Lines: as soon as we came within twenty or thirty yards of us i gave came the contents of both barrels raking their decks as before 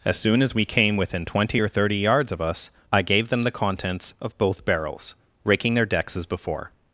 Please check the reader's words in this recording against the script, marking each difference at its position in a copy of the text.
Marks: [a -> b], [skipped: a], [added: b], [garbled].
as soon as we came within twenty or thirty yards of us i gave [came -> them] the contents of both barrels raking their decks as before